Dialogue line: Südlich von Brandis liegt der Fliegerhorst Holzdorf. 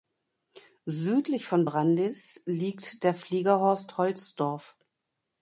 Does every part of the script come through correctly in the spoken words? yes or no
yes